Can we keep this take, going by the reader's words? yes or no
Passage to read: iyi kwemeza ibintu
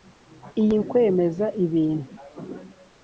yes